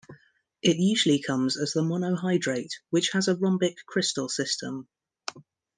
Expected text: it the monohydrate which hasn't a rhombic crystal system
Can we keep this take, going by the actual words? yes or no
no